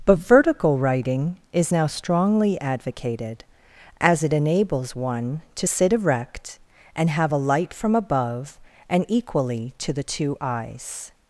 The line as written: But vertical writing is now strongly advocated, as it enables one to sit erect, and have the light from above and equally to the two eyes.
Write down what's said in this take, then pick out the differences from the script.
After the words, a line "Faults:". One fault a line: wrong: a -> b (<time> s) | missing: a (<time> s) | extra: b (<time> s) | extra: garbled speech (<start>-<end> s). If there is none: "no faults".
But vertical writing is now strongly advocated, as it enables one to sit erect, and have a light from above and equally to the two eyes.
Faults:
wrong: the -> a (7.3 s)